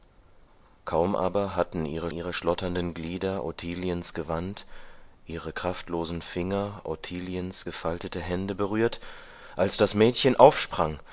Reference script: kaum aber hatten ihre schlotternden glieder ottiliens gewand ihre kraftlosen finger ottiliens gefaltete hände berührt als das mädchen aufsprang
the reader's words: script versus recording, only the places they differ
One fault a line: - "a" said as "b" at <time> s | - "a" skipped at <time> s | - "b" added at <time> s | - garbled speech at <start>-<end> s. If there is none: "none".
- "ihre" added at 2.1 s